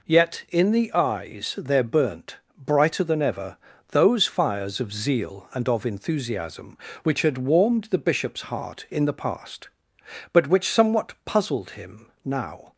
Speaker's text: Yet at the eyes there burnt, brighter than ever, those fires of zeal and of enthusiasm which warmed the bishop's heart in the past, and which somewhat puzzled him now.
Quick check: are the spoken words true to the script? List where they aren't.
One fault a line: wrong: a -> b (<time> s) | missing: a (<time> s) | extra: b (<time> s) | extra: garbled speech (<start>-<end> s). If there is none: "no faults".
wrong: at -> in (0.5 s)
extra: had (7.2 s)
wrong: and -> but (10.3 s)